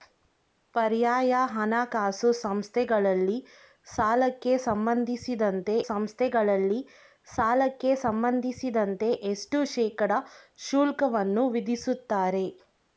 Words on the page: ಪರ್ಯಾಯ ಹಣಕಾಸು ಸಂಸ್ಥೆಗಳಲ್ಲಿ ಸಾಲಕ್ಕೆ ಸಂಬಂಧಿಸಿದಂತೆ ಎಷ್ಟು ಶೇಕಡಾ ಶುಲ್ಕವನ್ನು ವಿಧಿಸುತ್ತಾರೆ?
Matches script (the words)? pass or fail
fail